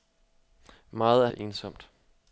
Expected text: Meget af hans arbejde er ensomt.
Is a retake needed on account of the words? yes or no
yes